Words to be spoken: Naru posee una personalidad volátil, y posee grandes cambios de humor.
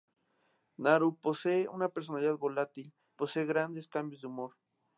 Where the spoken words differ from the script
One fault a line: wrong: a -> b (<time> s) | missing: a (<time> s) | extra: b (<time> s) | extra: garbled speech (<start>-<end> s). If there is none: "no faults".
missing: y (2.9 s)